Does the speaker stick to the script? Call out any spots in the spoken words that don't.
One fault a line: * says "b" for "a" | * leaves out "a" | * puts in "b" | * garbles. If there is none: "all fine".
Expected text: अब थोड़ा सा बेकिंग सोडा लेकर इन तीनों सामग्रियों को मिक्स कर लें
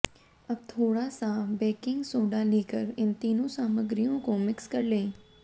all fine